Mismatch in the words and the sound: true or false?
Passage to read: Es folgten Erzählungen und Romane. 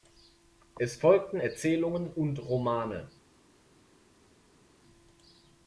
false